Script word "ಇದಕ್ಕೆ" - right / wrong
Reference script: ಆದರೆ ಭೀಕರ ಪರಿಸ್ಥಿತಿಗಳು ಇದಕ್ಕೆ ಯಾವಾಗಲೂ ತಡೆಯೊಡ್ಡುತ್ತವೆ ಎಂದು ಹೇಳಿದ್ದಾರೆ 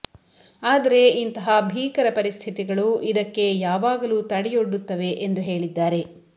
right